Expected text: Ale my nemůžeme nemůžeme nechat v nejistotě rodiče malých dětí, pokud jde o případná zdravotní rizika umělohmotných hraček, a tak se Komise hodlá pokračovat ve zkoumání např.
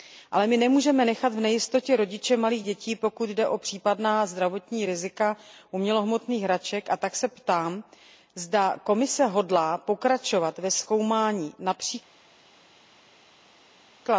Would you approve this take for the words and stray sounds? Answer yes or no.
no